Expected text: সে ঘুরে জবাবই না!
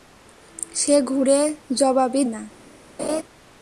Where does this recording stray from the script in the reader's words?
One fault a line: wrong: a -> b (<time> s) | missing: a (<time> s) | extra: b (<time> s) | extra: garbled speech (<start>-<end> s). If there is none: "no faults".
no faults